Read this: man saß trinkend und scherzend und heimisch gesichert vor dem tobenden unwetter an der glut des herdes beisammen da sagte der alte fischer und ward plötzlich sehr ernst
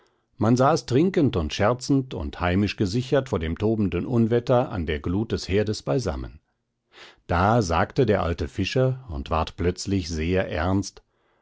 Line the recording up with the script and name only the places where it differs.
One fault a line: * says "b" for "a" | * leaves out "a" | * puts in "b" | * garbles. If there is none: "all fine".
all fine